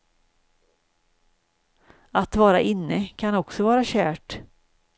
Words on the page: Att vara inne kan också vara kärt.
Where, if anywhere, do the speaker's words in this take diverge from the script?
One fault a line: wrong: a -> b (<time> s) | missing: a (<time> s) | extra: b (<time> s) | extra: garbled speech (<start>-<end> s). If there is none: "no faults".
no faults